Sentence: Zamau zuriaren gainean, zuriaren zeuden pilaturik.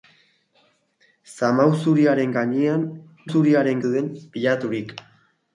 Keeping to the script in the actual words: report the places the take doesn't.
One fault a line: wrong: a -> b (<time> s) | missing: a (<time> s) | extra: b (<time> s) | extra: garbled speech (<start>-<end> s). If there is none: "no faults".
no faults